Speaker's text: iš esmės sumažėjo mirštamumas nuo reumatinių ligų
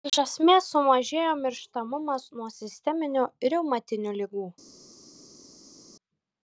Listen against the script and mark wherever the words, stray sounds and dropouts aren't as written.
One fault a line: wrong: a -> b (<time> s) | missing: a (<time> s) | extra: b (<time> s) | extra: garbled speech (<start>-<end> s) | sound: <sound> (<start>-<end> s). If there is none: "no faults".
extra: sisteminių (2.6 s)